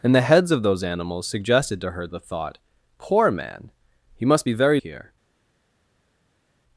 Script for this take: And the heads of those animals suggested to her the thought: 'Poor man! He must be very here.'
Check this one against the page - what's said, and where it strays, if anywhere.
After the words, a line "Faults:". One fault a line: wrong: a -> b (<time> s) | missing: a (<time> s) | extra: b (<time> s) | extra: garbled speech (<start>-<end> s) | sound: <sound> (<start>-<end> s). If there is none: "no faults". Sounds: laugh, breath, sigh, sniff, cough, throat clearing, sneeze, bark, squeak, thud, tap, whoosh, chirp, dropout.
And the heads of those animals suggested to her the thought: 'Poor man! He must be very here.'
Faults:
no faults